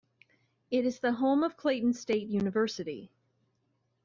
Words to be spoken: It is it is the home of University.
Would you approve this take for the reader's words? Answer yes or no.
no